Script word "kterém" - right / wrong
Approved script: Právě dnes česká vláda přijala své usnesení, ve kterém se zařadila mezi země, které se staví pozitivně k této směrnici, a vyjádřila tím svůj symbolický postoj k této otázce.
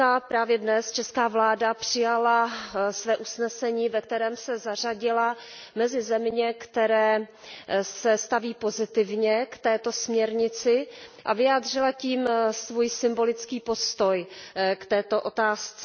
right